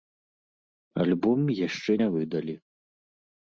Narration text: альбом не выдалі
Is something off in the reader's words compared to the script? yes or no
yes